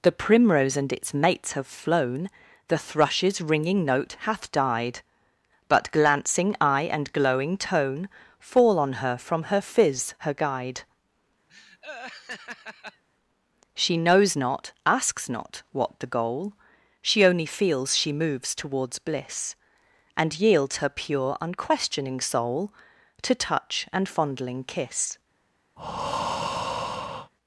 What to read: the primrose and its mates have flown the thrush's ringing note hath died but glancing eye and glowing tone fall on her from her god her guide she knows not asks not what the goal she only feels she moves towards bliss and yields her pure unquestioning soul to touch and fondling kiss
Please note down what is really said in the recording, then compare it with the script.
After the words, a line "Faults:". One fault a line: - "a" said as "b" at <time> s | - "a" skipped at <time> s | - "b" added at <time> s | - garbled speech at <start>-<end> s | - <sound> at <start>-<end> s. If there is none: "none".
the primrose and its mates have flown the thrush's ringing note hath died but glancing eye and glowing tone fall on her from her fizz her guide she knows not asks not what the goal she only feels she moves towards bliss and yields her pure unquestioning soul to touch and fondling kiss
Faults:
- "god" said as "fizz" at 9.6 s
- laugh at 11.5-13.0 s
- breath at 25.8-27.3 s